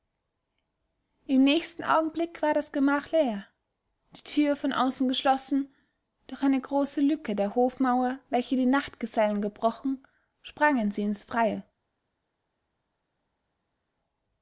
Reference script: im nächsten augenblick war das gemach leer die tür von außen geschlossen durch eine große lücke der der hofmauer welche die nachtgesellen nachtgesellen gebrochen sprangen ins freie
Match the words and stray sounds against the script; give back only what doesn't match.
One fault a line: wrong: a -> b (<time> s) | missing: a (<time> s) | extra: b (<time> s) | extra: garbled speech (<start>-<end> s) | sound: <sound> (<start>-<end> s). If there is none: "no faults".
missing: der (7.5 s)
missing: nachtgesellen (9.4 s)
extra: sie (10.9 s)